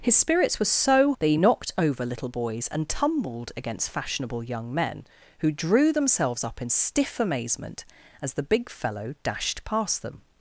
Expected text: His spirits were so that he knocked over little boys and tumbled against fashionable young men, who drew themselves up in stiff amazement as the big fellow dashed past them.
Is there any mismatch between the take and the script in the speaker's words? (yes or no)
no